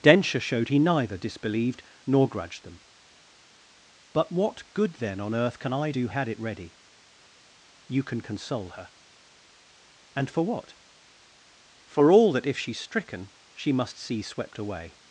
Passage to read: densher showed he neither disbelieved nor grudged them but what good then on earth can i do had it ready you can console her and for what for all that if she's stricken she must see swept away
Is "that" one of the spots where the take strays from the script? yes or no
no